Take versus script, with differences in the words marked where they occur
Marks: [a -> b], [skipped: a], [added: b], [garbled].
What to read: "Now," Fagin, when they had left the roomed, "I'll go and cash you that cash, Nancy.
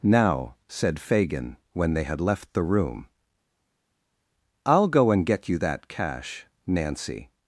"Now," [added: said] Fagin, when they had left the [roomed, -> room] "I'll go and [cash -> get] you that cash, Nancy.